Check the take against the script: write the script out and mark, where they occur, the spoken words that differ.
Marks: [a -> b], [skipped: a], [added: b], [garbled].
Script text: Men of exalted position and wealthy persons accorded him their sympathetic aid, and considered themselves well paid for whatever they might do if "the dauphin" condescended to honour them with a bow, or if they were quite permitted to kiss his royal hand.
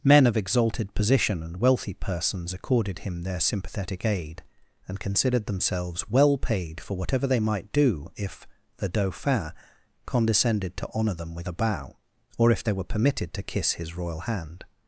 Men of exalted position and wealthy persons accorded him their sympathetic aid, and considered themselves well paid for whatever they might do if "the dauphin" condescended to honour them with a bow, or if they were [skipped: quite] permitted to kiss his royal hand.